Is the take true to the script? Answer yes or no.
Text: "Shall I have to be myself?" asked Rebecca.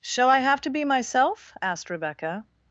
yes